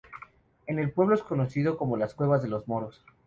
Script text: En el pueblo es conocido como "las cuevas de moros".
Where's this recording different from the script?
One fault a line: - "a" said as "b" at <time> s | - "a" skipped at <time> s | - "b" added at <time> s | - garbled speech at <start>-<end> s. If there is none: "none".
- "los" added at 2.5 s